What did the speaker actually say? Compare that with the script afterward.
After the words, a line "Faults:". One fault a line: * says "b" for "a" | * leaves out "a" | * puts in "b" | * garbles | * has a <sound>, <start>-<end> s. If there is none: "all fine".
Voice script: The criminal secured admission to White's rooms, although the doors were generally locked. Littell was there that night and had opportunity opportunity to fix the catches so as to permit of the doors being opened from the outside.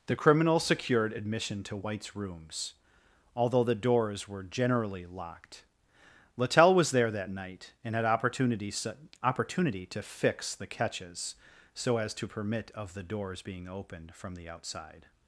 The criminal secured admission to White's rooms, although the doors were generally locked. Littell was there that night and had opportunity opportunity to fix the catches so as to permit of the doors being opened from the outside.
Faults:
all fine